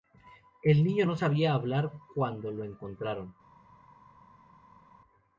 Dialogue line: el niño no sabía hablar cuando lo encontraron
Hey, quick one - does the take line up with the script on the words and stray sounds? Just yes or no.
yes